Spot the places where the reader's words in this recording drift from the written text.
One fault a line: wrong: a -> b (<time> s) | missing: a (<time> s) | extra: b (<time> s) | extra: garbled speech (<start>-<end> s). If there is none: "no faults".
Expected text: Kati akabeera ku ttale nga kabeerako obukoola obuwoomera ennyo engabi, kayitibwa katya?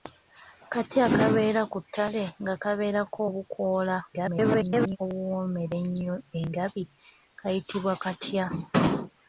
extra: garbled speech (4.1-5.0 s)